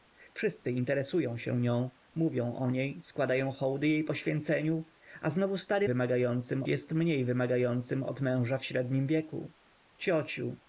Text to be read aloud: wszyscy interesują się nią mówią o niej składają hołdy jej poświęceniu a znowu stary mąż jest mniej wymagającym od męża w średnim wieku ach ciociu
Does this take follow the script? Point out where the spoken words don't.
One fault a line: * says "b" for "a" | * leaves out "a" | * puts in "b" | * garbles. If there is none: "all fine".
* says "wymagającym" for "mąż"
* leaves out "ach"